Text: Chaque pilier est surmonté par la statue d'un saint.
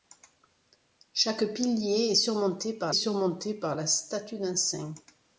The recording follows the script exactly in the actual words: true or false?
false